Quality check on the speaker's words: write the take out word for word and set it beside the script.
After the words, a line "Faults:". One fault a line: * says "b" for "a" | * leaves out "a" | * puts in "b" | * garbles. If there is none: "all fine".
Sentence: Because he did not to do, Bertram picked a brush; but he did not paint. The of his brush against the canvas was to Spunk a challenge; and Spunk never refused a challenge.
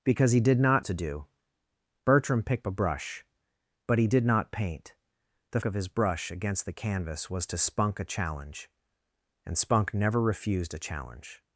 Because he did not to do, Bertram picked a brush; but he did not paint. The of his brush against the canvas was to Spunk a challenge; and Spunk never refused a challenge.
Faults:
all fine